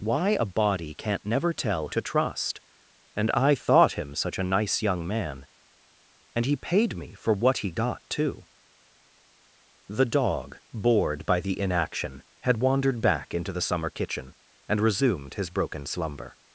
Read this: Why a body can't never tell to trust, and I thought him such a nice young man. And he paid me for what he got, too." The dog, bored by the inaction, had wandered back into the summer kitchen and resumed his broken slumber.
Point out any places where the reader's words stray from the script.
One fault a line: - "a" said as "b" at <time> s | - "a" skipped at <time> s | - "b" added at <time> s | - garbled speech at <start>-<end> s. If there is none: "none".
none